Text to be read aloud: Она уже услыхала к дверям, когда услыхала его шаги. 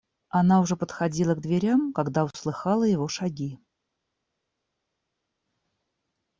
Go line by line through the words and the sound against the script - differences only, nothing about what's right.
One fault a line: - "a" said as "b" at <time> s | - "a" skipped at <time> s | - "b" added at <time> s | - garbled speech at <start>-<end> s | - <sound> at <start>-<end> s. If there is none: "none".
- "услыхала" said as "подходила" at 0.8 s